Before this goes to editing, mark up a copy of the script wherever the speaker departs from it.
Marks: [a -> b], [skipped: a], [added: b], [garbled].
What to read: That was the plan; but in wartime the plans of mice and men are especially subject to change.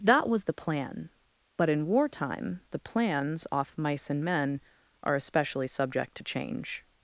That was the plan; but in wartime the plans [of -> off] mice and men are especially subject to change.